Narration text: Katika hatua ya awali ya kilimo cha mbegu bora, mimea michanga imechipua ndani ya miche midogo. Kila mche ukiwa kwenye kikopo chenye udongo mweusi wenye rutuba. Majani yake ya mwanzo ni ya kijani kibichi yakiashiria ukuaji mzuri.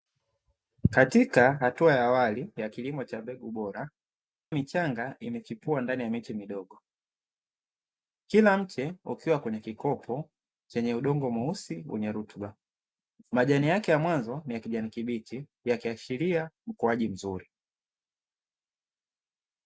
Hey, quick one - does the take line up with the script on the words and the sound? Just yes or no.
no